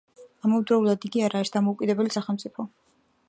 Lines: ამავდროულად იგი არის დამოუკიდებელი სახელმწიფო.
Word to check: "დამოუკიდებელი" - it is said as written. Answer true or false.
true